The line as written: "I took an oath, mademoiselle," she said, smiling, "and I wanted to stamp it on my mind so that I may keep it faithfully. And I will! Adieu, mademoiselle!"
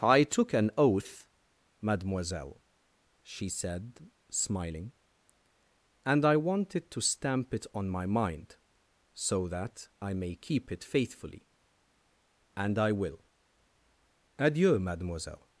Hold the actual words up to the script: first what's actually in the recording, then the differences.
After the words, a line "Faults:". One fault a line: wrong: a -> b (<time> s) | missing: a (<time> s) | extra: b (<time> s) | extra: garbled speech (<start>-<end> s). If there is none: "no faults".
"I took an oath, mademoiselle," she said, smiling, "and I wanted to stamp it on my mind so that I may keep it faithfully. And I will! Adieu, mademoiselle!"
Faults:
no faults